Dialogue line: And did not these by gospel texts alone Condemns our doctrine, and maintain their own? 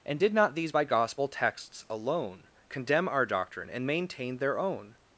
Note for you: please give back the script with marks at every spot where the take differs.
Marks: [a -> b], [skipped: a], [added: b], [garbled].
And did not these by gospel texts alone [Condemns -> Condemn] our doctrine, and maintain their own?